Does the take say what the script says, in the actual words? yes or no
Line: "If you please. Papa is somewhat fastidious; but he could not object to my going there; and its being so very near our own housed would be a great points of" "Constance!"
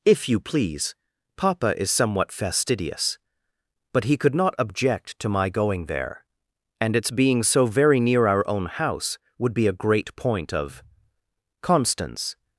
no